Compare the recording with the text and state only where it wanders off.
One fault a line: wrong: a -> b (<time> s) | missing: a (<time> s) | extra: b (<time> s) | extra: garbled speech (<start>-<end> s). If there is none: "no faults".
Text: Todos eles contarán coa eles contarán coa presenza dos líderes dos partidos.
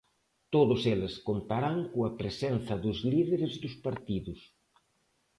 missing: eles contarán coa (2.1 s)